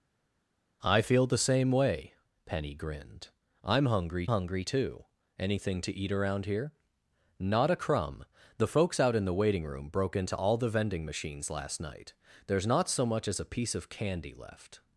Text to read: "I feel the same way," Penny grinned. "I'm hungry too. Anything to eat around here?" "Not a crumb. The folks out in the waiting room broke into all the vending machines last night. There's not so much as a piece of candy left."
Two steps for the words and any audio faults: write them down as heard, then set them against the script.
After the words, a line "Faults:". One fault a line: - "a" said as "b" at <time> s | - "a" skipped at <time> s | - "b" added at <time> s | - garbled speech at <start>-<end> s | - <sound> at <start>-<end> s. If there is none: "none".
"I feel the same way," Penny grinned. "I'm hungry hungry too. Anything to eat around here?" "Not a crumb. The folks out in the waiting room broke into all the vending machines last night. There's not so much as a piece of candy left."
Faults:
- "hungry" added at 4.2 s